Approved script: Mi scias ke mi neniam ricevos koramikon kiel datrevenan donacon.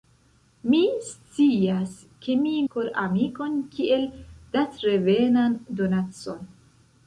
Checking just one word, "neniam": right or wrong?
wrong